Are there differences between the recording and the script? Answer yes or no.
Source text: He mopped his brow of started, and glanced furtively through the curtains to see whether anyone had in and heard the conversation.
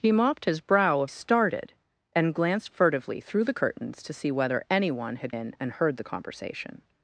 no